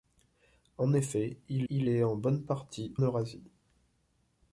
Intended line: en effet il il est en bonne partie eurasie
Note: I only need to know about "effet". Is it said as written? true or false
true